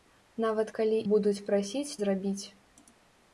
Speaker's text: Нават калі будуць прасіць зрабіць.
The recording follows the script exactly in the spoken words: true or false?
true